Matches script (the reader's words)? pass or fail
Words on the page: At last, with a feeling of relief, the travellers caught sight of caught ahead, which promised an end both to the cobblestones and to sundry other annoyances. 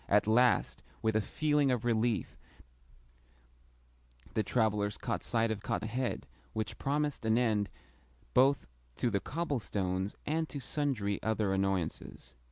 pass